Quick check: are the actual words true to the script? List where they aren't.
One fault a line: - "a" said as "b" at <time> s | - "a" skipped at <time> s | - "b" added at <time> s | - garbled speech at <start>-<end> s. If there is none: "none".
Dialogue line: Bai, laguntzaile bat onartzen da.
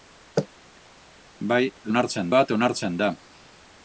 - "laguntzaile" said as "onartzen" at 1.9 s